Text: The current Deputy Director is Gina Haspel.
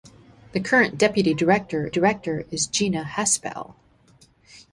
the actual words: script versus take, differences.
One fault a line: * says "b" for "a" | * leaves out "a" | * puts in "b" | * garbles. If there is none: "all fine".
* puts in "Director"